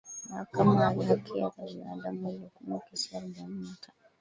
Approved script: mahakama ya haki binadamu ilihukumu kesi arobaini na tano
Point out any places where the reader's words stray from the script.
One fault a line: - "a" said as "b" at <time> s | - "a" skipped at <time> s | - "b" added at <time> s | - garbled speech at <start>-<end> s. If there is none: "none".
- "za" added at 1.1 s